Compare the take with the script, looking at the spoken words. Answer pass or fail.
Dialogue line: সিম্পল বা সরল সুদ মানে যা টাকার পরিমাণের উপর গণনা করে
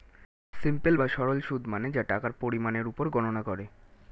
pass